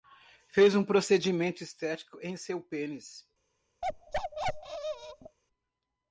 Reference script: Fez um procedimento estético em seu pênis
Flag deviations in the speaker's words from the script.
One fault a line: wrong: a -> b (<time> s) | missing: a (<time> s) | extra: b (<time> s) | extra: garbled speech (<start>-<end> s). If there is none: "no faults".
no faults